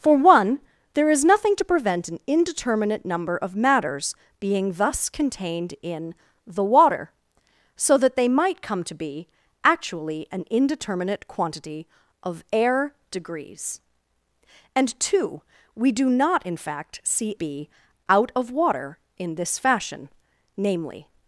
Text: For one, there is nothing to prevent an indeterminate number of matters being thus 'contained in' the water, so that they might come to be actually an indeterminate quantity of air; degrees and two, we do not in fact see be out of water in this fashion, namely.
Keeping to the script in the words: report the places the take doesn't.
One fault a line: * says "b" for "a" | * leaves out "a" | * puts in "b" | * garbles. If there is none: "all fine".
all fine